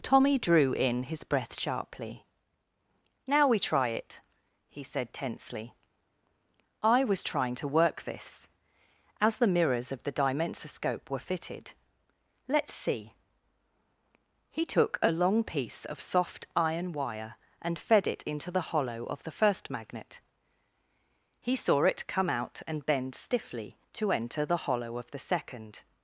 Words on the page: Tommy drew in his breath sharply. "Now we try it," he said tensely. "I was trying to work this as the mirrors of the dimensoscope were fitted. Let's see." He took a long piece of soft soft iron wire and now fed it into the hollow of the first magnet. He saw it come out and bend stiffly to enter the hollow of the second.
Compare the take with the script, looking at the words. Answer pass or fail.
fail